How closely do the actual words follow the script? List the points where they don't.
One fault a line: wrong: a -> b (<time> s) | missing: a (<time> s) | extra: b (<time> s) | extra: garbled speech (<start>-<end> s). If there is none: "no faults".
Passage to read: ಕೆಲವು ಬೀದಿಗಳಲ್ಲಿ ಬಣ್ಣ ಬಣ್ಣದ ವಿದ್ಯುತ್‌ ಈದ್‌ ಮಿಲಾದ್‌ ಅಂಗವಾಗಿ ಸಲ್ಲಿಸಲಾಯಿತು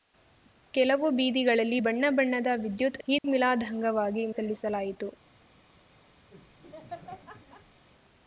no faults